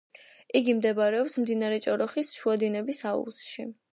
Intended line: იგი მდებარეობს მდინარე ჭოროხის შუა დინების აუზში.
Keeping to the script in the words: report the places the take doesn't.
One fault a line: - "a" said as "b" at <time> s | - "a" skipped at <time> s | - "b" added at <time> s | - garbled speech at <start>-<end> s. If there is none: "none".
none